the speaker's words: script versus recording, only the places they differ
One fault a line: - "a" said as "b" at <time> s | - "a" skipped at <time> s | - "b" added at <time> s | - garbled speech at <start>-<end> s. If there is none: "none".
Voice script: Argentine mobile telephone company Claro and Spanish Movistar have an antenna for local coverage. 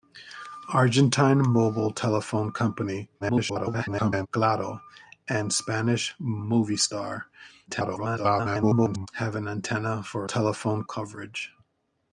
- garbled speech at 3.2-4.3 s
- garbled speech at 7.7-9.1 s
- "local" said as "telephone" at 10.2 s